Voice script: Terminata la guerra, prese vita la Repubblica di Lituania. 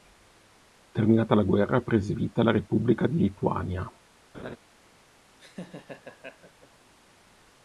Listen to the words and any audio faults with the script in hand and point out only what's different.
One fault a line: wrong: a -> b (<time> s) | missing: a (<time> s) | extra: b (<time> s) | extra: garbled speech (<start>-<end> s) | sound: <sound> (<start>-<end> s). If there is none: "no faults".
sound: laugh (4.3-4.6 s)
sound: laugh (5.4-6.7 s)